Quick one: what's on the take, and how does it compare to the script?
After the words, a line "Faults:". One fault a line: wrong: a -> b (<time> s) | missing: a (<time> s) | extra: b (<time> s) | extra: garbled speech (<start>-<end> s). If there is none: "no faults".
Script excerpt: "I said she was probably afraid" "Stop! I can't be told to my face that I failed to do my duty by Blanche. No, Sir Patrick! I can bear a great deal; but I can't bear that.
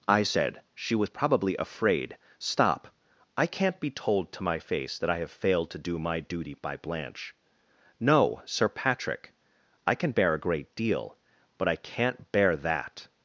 "I said she was probably afraid" "Stop! I can't be told to my face that I have failed to do my duty by Blanche. No, Sir Patrick! I can bear a great deal; but I can't bear that.
Faults:
extra: have (5.2 s)